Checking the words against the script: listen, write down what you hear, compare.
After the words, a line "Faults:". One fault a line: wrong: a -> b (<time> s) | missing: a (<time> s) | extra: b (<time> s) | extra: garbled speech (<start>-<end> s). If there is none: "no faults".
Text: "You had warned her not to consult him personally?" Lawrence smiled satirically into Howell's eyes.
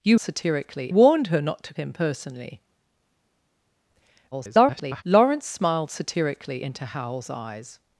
"You satirically warned her not to him personally?" [garbled] Lawrence smiled satirically into Howell's eyes.
Faults:
wrong: had -> satirically (0.2 s)
missing: consult (1.7 s)
extra: garbled speech (4.3-5.0 s)